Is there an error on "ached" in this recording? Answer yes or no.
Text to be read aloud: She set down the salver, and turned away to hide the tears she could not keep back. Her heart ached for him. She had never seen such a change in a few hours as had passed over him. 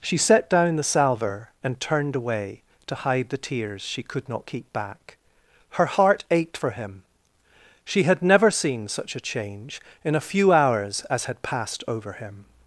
no